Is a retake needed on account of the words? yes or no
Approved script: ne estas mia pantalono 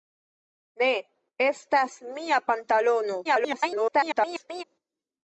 yes